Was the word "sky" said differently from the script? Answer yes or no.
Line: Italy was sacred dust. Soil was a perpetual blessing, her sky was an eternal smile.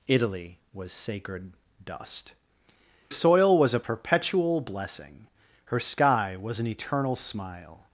no